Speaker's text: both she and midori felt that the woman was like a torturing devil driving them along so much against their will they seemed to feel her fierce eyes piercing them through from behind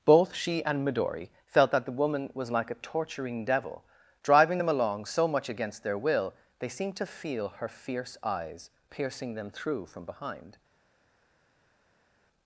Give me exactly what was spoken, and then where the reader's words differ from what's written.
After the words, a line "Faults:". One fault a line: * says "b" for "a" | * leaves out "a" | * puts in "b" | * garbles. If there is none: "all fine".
both she and midori felt that the woman was like a torturing devil driving them along so much against their will they seemed to feel her fierce eyes piercing them through from behind
Faults:
all fine